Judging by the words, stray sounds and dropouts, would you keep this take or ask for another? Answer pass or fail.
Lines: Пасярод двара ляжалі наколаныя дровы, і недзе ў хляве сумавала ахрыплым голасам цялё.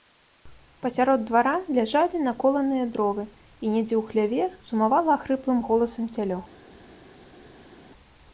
pass